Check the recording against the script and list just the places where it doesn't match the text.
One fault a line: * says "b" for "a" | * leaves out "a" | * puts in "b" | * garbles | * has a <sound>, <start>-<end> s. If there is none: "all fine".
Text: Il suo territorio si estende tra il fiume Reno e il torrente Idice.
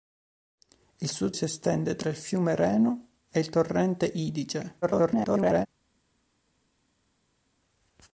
* leaves out "territorio"
* garbles